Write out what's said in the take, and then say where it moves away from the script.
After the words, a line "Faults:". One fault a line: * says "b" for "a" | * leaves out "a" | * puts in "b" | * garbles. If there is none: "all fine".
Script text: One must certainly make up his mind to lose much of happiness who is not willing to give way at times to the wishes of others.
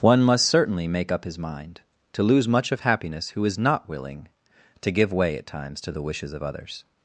One must certainly make up his mind to lose much of happiness who is not willing to give way at times to the wishes of others.
Faults:
all fine